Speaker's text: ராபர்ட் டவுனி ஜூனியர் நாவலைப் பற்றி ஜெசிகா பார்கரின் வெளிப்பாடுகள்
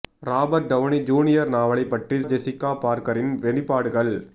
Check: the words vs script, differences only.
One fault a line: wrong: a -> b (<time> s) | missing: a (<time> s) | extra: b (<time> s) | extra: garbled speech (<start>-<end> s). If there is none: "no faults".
no faults